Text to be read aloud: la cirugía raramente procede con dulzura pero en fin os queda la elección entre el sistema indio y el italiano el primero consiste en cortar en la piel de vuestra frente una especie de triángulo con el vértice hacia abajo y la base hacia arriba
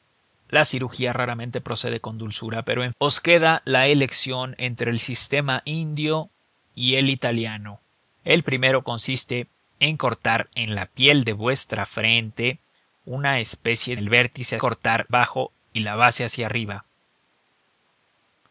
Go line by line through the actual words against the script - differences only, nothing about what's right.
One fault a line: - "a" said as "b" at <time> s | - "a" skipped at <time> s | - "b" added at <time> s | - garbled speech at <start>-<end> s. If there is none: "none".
- "fin" skipped at 2.9 s
- "de triángulo con" skipped at 14.0 s
- "hacia" said as "cortar" at 14.6 s